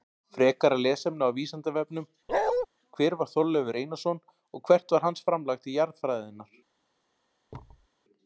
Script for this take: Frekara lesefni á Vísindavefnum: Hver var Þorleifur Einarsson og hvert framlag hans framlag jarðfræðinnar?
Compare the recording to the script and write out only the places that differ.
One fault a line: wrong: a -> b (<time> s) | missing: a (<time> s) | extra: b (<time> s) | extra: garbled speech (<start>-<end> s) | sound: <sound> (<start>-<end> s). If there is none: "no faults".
sound: bark (2.3-2.7 s)
wrong: framlag -> var (5.0 s)
extra: til (5.6 s)
sound: thud (7.5-7.9 s)